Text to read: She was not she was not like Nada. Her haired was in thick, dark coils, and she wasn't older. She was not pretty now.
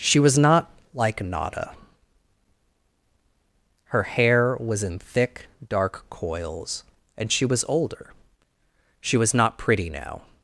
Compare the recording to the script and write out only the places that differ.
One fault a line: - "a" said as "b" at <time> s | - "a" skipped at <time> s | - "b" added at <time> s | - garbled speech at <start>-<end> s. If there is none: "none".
- "she was not" skipped at 0.7 s
- "haired" said as "hair" at 4.0 s
- "wasn't" said as "was" at 7.5 s